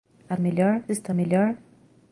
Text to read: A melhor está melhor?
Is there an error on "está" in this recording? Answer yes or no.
no